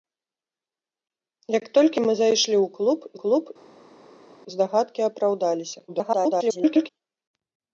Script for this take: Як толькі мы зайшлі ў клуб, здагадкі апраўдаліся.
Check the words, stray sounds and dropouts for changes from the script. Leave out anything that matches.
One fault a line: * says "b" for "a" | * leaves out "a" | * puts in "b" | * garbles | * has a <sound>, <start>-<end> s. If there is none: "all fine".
* puts in "клуб"
* garbles